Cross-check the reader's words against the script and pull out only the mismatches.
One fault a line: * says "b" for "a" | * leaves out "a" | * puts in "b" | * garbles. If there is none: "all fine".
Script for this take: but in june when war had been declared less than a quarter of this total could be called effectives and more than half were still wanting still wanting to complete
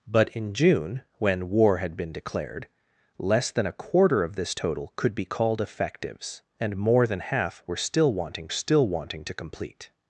all fine